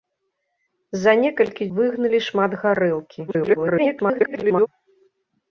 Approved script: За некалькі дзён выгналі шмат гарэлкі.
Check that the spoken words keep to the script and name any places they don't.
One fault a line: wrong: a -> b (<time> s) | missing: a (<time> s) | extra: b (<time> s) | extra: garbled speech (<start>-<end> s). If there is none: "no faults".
missing: дзён (1.7 s)
extra: garbled speech (3.3-4.7 s)